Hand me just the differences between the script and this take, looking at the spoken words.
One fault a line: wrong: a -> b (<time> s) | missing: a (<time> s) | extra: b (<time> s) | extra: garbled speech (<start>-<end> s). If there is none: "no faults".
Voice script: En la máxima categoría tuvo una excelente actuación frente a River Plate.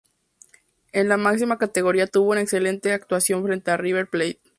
no faults